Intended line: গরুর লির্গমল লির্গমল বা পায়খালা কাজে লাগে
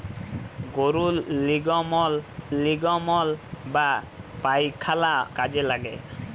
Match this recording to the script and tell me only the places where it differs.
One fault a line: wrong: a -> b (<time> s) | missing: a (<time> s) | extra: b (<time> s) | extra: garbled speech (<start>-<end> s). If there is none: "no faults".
no faults